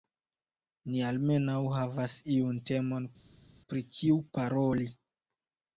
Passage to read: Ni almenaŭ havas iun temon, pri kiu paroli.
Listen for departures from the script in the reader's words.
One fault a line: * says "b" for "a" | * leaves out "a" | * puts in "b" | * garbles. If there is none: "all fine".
all fine